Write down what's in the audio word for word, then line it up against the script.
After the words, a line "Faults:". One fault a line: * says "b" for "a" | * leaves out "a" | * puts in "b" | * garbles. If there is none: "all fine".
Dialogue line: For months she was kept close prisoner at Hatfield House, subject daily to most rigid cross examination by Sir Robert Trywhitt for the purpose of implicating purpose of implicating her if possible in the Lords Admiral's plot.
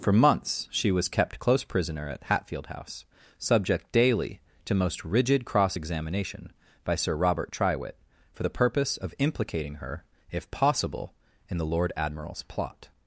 For months she was kept close prisoner at Hatfield House, subject daily to most rigid cross examination by Sir Robert Trywhitt for the purpose of implicating her if possible in the Lord Admiral's plot.
Faults:
* leaves out "purpose of implicating"
* says "Lord" for "Lords"